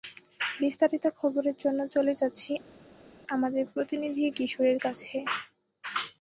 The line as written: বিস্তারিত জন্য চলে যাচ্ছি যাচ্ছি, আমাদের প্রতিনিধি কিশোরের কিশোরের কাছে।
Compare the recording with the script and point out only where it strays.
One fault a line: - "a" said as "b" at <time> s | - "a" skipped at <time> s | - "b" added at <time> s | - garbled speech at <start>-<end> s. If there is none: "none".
- "খবরের" added at 1.2 s
- "যাচ্ছি" skipped at 2.5 s
- "কিশোরের" skipped at 4.8 s